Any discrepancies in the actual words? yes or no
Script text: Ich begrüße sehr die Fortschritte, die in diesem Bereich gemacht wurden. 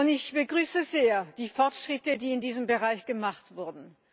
no